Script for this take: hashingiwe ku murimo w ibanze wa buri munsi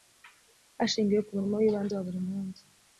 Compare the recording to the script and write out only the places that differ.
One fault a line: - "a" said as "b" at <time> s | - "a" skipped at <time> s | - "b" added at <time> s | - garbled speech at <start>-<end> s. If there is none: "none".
none